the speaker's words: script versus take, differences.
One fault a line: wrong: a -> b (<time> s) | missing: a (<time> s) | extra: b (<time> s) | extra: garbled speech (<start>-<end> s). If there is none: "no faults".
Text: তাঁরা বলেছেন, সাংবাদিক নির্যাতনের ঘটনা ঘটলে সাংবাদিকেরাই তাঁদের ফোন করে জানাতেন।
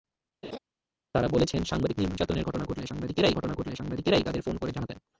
extra: ঘটনা ঘটলে সাংবাদিকেরাই (3.4 s)